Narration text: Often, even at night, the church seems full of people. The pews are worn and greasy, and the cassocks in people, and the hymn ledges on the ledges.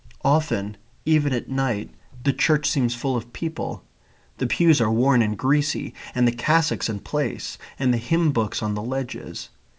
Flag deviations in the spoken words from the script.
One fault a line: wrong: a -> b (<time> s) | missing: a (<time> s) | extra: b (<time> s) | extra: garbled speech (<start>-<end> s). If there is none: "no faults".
wrong: people -> place (7.0 s)
wrong: ledges -> books (8.3 s)